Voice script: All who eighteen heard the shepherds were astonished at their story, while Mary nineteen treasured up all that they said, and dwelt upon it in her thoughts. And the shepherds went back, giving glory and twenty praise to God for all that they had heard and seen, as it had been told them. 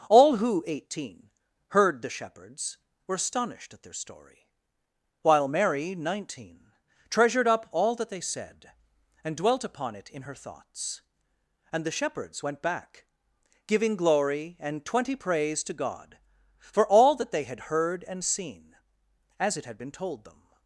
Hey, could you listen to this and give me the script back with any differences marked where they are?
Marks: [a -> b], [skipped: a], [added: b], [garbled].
All who eighteen heard the shepherds were astonished at their story, while Mary nineteen treasured up all that they said, and dwelt upon it in her thoughts. And the shepherds went back, giving glory and twenty praise to God for all that they had heard and seen, as it had been told them.